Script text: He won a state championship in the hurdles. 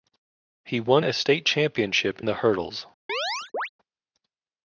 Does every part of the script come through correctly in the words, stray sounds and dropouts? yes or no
no